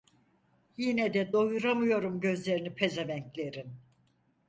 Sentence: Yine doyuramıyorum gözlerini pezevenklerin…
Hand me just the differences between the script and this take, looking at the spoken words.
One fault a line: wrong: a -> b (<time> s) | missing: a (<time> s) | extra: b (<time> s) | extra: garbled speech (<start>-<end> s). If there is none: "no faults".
extra: de (1.1 s)